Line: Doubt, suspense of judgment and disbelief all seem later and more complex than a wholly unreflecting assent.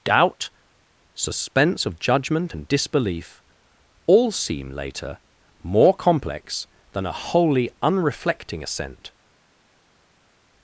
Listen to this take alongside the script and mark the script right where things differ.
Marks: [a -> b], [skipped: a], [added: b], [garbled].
Doubt, suspense of judgment and disbelief all seem later [skipped: and] more complex than a wholly unreflecting assent.